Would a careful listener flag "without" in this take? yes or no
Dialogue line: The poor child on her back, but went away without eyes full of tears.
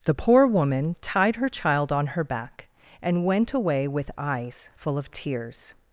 yes